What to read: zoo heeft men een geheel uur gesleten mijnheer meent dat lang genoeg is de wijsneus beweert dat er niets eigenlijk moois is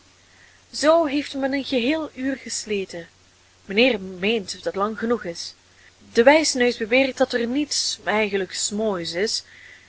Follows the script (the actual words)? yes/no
yes